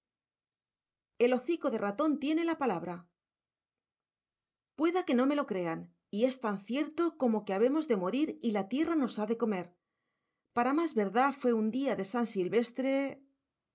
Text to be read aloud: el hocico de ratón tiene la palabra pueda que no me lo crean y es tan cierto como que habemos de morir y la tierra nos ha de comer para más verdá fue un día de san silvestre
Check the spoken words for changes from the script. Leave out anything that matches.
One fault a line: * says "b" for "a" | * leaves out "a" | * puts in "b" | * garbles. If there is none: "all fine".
all fine